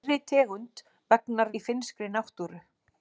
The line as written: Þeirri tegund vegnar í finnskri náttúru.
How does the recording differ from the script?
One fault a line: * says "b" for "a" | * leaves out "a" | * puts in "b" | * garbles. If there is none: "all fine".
all fine